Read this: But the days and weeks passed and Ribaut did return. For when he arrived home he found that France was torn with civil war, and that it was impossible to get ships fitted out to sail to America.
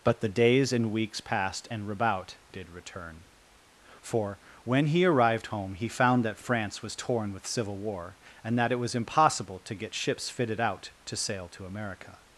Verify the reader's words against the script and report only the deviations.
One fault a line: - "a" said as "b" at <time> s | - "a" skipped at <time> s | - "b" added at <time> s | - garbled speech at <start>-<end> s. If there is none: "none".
none